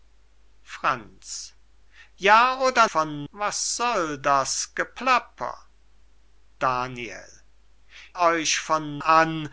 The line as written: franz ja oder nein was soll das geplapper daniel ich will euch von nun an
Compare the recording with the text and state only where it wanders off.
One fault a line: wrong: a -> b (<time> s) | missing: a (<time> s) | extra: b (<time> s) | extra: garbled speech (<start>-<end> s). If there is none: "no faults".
wrong: nein -> von (2.8 s)
missing: ich will (7.4 s)
missing: nun (9.0 s)